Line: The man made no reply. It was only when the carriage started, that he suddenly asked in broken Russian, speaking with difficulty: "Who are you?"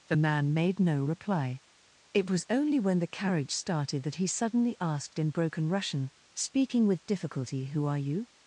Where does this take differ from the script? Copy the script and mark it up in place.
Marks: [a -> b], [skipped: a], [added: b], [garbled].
The man made no reply. It was only when the carriage started, that he suddenly asked in broken Russian, speaking with difficulty: "Who are you?"